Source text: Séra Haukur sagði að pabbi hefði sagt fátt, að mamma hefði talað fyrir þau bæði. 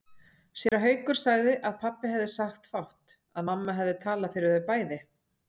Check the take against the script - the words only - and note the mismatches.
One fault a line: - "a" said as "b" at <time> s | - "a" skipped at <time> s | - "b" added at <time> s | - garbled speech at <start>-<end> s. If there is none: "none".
none